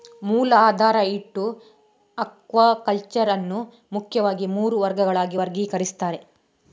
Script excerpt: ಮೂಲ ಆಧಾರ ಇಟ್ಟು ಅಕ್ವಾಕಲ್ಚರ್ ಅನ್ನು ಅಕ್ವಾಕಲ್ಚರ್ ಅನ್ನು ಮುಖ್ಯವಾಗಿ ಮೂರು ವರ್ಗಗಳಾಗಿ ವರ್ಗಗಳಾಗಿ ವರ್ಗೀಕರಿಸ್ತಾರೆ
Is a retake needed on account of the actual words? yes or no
yes